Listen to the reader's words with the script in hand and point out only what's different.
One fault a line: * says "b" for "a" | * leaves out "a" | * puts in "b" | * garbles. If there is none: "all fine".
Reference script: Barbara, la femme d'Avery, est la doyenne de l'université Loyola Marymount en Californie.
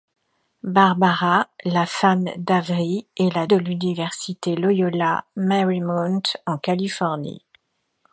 * leaves out "doyenne"